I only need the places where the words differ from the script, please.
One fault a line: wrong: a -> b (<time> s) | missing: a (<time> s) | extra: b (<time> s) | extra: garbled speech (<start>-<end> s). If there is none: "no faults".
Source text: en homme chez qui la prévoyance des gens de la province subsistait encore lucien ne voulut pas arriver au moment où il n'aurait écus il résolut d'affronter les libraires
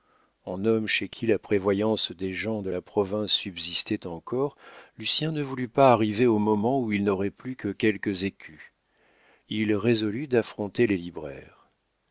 extra: plus que quelques (7.3 s)